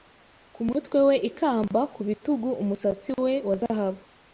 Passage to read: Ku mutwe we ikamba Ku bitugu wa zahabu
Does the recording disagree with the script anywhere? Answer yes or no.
yes